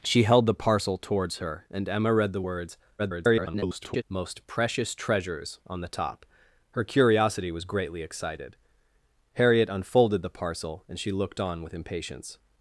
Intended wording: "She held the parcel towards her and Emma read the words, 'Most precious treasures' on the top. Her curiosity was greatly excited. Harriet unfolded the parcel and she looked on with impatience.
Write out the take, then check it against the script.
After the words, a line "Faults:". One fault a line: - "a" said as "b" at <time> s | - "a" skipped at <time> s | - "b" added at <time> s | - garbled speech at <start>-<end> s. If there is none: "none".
"She held the parcel towards her and Emma read the words, [garbled] 'Most precious treasures' on the top. Her curiosity was greatly excited. Harriet unfolded the parcel and she looked on with impatience.
Faults:
- garbled speech at 3.0-4.0 s